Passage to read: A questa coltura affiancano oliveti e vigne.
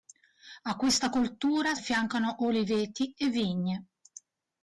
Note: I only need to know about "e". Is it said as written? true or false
true